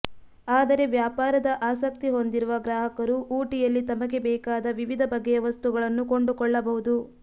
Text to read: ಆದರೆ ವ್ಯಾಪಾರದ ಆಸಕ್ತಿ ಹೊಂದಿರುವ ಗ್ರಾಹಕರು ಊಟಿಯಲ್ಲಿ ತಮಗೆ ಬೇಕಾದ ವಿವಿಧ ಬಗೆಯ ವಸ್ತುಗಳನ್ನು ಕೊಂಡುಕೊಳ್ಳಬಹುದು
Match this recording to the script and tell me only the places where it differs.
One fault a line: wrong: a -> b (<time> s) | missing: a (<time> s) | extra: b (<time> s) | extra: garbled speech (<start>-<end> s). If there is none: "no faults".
no faults